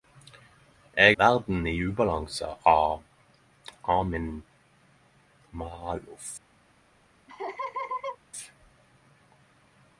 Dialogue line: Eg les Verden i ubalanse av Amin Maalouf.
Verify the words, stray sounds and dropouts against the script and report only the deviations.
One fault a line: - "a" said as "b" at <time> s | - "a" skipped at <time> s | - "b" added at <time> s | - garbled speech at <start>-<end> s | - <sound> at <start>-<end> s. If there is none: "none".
- "les" skipped at 1.2 s
- laugh at 7.3-8.2 s